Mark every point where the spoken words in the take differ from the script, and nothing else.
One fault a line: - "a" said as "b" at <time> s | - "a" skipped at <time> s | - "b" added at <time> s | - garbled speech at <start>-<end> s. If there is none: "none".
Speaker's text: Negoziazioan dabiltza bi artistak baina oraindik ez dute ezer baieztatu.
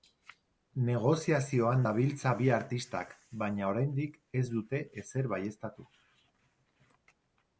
none